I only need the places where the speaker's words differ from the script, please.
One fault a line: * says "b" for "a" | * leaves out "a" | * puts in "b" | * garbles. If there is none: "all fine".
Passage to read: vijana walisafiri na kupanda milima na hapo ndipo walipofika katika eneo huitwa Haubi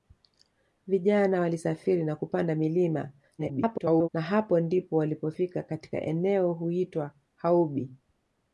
* garbles